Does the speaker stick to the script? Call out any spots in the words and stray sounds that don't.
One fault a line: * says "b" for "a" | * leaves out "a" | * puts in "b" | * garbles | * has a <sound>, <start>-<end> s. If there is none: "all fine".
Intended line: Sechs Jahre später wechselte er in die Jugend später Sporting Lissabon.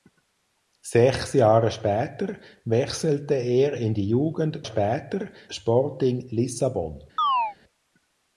* has a chirp, 7.2-7.6 s